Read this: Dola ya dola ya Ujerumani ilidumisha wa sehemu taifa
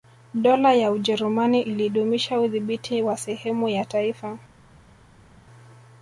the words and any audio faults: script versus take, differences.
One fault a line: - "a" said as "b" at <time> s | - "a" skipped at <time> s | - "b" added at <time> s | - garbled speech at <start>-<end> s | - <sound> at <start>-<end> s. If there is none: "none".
- "dola ya" skipped at 0.9 s
- "udhibiti" added at 2.4 s
- "ya" added at 3.7 s